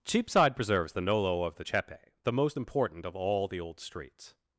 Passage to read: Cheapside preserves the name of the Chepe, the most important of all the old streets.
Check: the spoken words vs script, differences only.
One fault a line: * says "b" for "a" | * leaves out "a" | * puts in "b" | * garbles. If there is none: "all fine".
* says "nolo" for "name"